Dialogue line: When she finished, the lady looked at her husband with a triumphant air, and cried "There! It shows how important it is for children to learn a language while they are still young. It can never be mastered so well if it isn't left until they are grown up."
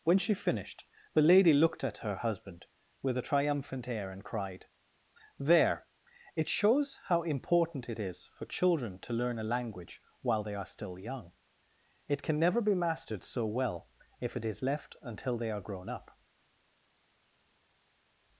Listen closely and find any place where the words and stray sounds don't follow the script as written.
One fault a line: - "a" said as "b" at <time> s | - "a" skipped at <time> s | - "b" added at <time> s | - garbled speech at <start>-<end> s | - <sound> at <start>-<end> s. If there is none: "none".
- "isn't" said as "is" at 14.4 s